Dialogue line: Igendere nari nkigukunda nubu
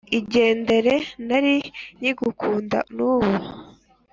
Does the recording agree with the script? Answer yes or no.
yes